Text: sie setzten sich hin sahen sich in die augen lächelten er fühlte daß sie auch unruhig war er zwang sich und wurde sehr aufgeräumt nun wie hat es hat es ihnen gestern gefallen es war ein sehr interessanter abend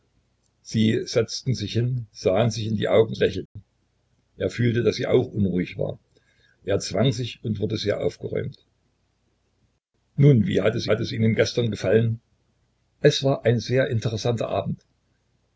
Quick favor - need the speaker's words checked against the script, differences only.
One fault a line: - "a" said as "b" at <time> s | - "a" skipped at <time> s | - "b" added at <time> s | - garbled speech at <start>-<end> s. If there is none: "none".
none